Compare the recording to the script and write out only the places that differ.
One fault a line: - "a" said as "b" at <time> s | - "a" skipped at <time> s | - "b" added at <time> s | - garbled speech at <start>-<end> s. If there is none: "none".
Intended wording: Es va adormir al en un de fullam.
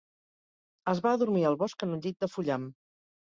- "bosc" added at 1.6 s
- "llit" added at 2.1 s